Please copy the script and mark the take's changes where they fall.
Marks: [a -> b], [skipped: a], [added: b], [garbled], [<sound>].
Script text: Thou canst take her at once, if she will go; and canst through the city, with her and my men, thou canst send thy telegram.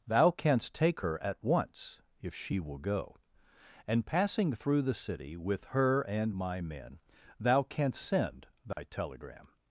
Thou canst take her at once, if she will go; and [canst -> passing] through the city, with her and my men, thou canst send thy [dropout] telegram.